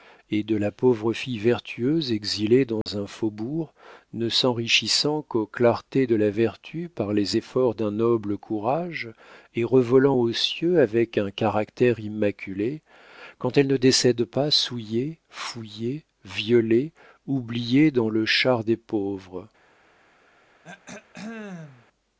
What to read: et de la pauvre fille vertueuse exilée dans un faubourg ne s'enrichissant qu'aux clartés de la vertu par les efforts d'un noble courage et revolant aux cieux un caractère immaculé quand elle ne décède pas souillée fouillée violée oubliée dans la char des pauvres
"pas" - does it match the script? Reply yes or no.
yes